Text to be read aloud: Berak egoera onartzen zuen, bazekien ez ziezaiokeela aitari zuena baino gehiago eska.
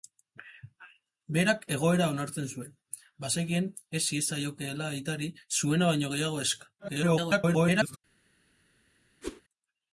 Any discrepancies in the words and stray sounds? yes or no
yes